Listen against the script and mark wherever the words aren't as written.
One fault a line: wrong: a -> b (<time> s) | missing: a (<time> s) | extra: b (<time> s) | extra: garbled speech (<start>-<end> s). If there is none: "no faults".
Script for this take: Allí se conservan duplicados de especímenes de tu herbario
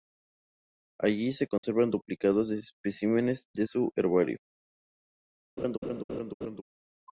wrong: tu -> su (3.6 s)